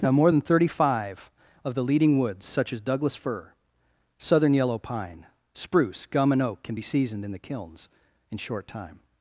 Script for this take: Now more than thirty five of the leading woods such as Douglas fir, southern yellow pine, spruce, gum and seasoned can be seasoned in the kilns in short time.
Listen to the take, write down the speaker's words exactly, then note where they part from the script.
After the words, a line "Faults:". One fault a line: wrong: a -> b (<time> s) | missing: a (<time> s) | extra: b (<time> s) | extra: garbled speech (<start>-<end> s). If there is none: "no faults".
Now more than thirty five of the leading woods such as Douglas fir, southern yellow pine, spruce, gum and oak can be seasoned in the kilns in short time.
Faults:
wrong: seasoned -> oak (6.4 s)